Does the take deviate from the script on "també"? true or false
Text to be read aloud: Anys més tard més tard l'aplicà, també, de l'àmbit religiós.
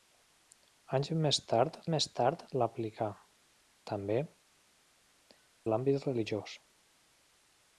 false